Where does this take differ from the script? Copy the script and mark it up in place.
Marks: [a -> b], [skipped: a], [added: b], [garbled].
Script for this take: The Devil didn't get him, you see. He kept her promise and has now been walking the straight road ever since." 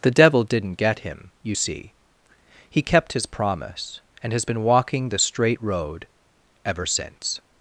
The Devil didn't get him, you see. He kept [her -> his] promise and has [skipped: now] been walking the straight road ever since."